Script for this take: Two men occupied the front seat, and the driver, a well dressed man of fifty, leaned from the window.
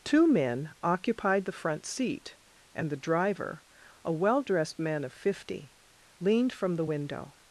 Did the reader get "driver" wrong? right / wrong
right